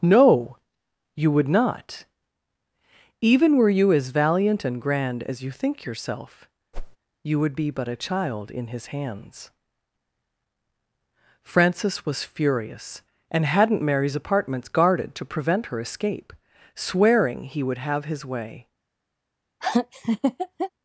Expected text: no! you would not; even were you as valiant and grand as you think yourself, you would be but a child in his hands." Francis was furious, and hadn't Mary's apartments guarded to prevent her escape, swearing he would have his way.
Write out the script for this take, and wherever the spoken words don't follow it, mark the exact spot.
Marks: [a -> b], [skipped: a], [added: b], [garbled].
no! you would not; even were you as valiant and grand as you think yourself, you would be but a child in his hands." Francis was furious, and hadn't Mary's apartments guarded to prevent her escape, swearing he would have his way.